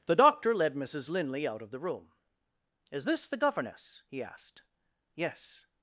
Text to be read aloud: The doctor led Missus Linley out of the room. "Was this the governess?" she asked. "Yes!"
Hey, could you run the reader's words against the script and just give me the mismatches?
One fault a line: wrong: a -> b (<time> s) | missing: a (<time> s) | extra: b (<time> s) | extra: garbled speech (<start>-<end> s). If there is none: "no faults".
wrong: Was -> Is (2.9 s)
wrong: she -> he (4.1 s)